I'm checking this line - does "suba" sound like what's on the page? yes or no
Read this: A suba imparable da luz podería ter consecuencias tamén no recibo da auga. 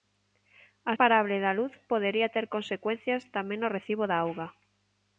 no